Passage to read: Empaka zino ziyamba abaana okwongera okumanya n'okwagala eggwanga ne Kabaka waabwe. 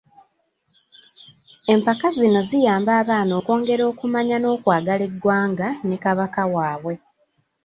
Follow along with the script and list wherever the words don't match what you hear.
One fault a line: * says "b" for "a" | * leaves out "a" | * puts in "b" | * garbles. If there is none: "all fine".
all fine